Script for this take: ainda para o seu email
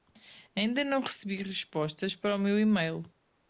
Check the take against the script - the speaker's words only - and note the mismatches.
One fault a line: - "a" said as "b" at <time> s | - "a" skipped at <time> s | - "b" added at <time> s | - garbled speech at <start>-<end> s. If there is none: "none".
- "não recebi respostas" added at 0.8 s
- "seu" said as "meu" at 2.4 s